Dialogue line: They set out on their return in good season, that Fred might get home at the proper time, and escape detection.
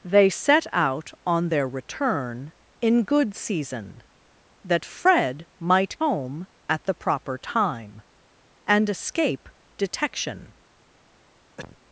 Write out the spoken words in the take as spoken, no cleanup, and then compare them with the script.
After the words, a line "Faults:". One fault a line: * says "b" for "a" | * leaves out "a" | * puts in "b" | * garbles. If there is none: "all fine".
They set out on their return in good season, that Fred might home at the proper time, and escape detection.
Faults:
* leaves out "get"